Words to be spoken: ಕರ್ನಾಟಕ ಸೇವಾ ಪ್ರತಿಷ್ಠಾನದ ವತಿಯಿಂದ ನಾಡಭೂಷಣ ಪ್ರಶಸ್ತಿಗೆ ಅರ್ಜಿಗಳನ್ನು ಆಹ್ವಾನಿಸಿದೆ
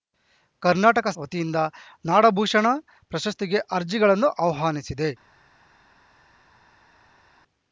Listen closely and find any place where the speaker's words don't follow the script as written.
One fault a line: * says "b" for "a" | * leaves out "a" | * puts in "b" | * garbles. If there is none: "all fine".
* leaves out "ಸೇವಾ ಪ್ರತಿಷ್ಠಾನದ"